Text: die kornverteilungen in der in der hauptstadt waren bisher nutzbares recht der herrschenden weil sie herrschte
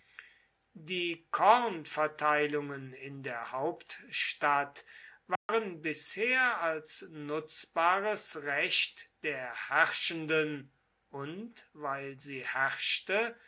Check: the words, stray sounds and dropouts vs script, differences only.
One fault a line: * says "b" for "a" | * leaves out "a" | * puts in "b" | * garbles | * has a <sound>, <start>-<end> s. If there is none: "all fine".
* leaves out "in der"
* has a dropout, 5.4-5.5 s
* puts in "als"
* puts in "und"